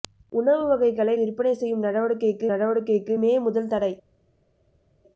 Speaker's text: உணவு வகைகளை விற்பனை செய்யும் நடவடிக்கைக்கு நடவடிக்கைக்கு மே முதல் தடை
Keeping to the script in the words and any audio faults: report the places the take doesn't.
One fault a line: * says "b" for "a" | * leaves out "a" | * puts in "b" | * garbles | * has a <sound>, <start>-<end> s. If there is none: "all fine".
all fine